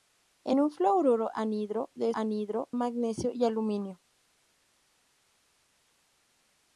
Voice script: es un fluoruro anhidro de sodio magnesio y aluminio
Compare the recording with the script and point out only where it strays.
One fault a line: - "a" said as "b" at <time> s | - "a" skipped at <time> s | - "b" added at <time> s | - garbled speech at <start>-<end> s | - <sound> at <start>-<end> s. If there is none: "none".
- "sodio" said as "anhidro" at 2.1 s